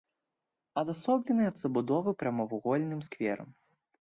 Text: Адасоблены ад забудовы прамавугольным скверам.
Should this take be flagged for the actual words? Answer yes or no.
no